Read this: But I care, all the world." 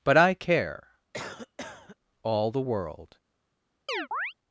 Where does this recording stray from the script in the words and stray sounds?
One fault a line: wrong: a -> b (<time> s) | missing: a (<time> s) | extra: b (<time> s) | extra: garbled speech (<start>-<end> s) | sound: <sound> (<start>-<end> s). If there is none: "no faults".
sound: cough (1.1-2.0 s)
sound: chirp (3.9-4.3 s)